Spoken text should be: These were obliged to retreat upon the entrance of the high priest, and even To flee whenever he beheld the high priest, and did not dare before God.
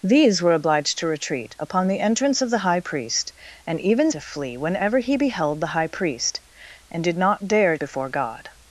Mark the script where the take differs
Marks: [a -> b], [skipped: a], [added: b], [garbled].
These were obliged to retreat upon the entrance of the high priest, and even To flee whenever he beheld the high priest, and did not dare before God.